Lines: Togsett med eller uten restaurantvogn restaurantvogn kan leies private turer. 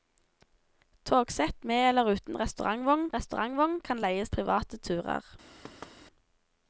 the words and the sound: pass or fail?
fail